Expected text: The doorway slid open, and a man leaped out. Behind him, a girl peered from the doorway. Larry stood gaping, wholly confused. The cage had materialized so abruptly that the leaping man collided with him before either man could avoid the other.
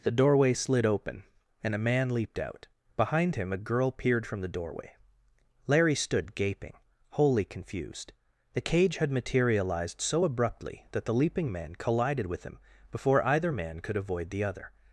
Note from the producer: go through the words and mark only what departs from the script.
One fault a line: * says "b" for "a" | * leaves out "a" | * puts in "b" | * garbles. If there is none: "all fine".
all fine